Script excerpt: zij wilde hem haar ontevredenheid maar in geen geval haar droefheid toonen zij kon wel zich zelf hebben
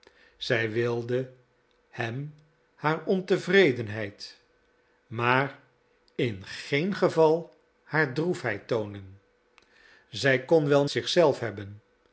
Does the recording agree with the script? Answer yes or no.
yes